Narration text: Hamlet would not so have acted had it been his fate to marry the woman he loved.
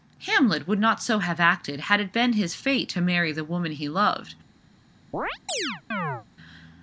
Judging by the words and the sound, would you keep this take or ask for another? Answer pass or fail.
fail